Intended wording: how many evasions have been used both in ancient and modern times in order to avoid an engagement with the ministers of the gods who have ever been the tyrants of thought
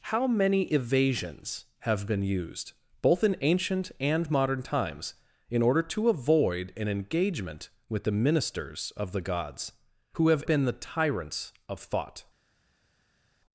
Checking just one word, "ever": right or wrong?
wrong